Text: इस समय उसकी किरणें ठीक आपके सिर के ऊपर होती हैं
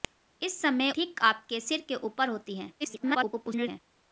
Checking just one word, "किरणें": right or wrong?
wrong